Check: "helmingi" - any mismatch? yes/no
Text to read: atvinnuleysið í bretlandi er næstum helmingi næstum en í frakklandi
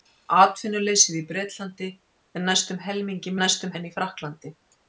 no